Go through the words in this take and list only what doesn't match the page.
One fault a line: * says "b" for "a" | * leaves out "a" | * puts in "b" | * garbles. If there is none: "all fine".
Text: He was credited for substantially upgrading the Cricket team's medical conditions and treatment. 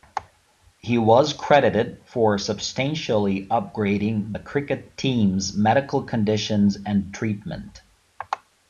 all fine